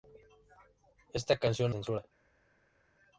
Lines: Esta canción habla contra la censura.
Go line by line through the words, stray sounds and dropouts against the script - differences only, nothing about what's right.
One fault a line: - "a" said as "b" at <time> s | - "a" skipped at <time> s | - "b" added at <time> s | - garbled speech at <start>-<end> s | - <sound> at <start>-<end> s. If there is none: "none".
- "habla contra la" skipped at 1.8 s